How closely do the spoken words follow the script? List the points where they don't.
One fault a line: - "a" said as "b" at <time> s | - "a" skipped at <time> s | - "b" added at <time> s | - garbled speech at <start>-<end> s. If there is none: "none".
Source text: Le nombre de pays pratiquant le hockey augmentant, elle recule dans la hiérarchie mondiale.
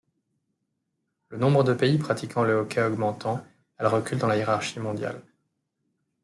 none